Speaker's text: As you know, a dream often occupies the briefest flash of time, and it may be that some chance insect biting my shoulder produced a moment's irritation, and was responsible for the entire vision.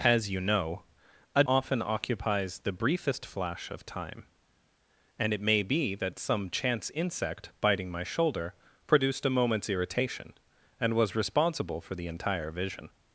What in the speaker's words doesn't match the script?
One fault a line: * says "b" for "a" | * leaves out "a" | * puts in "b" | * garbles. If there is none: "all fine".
* leaves out "dream"